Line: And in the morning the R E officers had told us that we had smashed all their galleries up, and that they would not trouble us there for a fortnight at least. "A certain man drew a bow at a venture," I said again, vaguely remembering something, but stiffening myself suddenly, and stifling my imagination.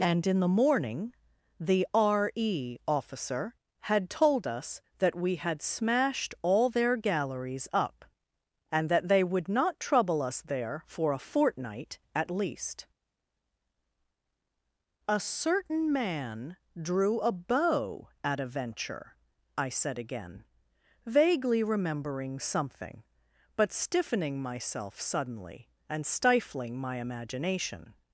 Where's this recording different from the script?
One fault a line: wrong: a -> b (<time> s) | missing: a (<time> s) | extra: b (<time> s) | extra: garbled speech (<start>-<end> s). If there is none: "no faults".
wrong: officers -> officer (2.9 s)